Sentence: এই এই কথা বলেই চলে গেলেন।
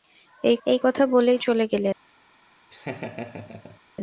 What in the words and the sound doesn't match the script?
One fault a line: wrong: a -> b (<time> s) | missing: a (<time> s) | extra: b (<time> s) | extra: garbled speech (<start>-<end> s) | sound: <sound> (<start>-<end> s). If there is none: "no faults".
sound: laugh (2.7-3.8 s)